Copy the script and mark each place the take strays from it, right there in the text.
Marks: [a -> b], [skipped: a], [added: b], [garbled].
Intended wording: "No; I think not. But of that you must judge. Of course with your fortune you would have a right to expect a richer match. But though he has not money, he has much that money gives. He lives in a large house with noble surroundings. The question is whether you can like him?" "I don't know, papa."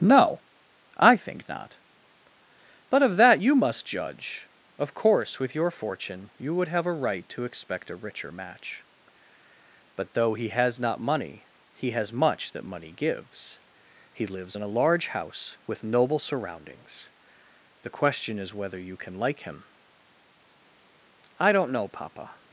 "No; I think not. But of that you must judge. Of course with your fortune you would have a right to expect a richer match. But though he has not money, he has much that money gives. He lives in a large house with noble surroundings. The question is whether you can like him?" "I don't know, papa."